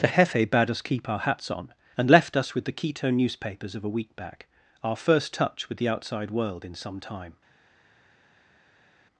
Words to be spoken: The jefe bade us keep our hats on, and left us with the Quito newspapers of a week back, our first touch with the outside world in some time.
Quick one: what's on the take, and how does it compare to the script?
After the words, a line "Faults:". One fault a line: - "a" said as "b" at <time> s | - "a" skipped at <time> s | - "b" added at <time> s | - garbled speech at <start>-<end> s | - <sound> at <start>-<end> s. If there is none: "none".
The jefe bade us keep our hats on, and left us with the Quito newspapers of a week back, our first touch with the outside world in some time.
Faults:
none